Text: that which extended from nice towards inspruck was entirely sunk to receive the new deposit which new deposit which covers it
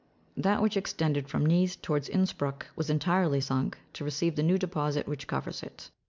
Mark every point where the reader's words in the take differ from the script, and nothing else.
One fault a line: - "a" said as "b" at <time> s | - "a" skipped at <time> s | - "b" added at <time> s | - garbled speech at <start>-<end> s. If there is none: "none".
- "new deposit which" skipped at 5.3 s